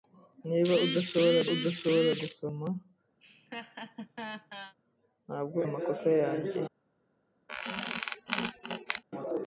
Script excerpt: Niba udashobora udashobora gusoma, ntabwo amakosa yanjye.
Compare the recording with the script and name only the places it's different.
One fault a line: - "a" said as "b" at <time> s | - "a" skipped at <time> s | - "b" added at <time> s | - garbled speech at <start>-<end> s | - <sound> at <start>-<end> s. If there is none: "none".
- laugh at 3.2-4.7 s
- squeak at 7.5-9.0 s